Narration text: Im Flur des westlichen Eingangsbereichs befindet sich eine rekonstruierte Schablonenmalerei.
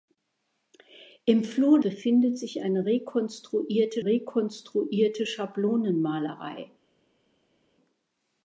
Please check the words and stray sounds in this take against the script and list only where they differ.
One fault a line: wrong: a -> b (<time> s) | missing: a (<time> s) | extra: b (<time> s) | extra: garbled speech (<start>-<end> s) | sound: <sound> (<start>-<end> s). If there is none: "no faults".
missing: des westlichen Eingangsbereichs (1.8 s)
extra: rekonstruierte (4.0 s)